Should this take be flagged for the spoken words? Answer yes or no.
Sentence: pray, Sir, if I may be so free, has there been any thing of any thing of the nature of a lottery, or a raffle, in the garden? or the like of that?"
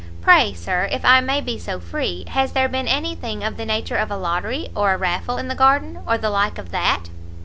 yes